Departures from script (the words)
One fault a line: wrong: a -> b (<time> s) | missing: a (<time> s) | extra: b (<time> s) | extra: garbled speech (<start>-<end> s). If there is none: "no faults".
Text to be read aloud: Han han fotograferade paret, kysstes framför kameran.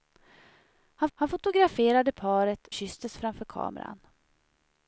no faults